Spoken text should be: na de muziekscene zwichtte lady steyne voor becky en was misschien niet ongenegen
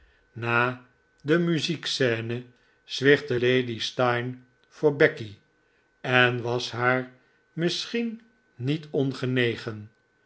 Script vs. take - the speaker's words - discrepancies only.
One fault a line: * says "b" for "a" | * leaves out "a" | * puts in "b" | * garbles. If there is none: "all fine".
* puts in "haar"